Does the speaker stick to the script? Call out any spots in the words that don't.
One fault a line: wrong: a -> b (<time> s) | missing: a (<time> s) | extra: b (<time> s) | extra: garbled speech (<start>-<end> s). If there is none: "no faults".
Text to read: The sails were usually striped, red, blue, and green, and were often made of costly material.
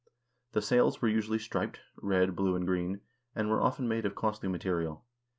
no faults